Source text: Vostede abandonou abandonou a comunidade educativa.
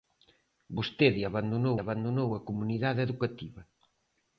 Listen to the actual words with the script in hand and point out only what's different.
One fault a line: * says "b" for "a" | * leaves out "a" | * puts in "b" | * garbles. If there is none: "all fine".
all fine